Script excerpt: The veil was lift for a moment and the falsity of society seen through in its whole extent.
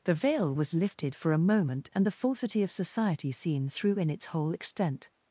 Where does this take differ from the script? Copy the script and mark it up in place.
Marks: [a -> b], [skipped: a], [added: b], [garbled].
The veil was [lift -> lifted] for a moment and the falsity of society seen through in its whole extent.